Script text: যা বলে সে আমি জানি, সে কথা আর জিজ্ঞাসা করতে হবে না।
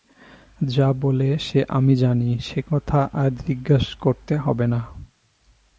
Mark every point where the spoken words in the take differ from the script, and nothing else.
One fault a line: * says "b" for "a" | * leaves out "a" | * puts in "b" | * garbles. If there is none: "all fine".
all fine